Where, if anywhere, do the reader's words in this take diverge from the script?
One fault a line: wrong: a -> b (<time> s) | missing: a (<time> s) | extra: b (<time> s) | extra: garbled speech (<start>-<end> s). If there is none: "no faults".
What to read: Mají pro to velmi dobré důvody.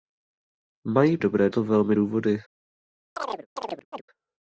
wrong: pro -> dobré (1.2 s)
missing: dobré (2.0 s)